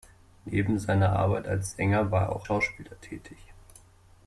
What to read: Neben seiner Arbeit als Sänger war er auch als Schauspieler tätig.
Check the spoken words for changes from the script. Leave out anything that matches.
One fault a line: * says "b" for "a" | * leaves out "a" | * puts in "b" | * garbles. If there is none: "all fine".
* leaves out "als"